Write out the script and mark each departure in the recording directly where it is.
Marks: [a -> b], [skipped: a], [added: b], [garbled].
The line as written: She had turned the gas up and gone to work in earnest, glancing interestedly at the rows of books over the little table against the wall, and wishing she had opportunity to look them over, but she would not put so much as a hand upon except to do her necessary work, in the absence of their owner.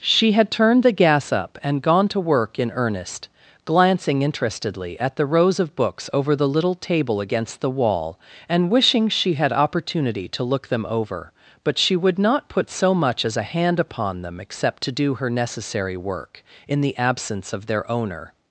She had turned the gas up and gone to work in earnest, glancing interestedly at the rows of books over the little table against the wall, and wishing she had opportunity to look them over, but she would not put so much as a hand upon [added: them] except to do her necessary work, in the absence of their owner.